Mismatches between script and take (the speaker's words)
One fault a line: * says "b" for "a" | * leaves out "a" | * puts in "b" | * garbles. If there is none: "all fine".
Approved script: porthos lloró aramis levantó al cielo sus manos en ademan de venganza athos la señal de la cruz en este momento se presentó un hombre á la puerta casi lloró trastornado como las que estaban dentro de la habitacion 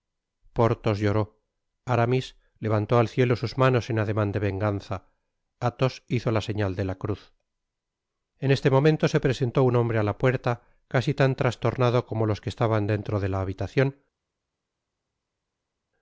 * puts in "hizo"
* says "tan" for "lloró"
* says "los" for "las"